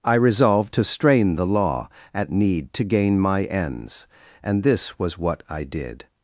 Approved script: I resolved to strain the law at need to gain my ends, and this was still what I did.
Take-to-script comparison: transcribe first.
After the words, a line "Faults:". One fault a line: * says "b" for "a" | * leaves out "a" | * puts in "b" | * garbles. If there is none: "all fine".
I resolved to strain the law at need to gain my ends, and this was what I did.
Faults:
* leaves out "still"